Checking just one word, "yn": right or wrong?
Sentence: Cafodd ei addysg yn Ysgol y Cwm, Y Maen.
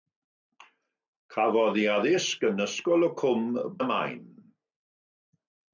right